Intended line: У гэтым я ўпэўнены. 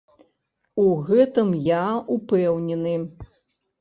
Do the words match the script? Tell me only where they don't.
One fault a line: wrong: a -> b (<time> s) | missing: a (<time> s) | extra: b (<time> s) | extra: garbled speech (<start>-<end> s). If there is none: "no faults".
no faults